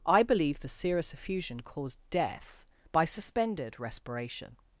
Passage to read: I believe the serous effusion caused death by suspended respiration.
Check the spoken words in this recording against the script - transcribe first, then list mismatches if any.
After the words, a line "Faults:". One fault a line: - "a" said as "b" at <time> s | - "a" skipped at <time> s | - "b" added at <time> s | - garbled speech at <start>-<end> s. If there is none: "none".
I believe the serous effusion caused death by suspended respiration.
Faults:
none